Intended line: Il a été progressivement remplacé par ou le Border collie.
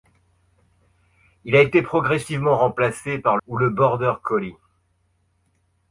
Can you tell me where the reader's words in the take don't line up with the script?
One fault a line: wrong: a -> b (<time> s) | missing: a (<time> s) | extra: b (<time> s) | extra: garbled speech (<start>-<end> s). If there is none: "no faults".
no faults